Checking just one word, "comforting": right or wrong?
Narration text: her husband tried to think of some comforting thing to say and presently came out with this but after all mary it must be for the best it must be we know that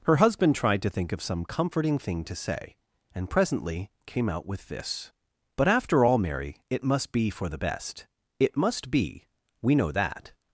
right